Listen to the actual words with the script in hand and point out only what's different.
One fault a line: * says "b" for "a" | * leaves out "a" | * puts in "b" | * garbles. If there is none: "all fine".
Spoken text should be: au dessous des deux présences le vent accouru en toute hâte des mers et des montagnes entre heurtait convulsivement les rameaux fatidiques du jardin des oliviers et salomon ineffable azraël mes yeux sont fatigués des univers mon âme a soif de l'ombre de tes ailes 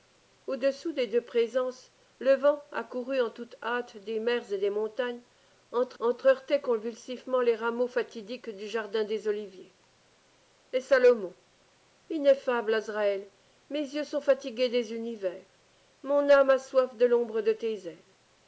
* puts in "entre"